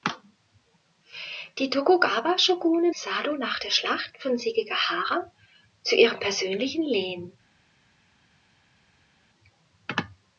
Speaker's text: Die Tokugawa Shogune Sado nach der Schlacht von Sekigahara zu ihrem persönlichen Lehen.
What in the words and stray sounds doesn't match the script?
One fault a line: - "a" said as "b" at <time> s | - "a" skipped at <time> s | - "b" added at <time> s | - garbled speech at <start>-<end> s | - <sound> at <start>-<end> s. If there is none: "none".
none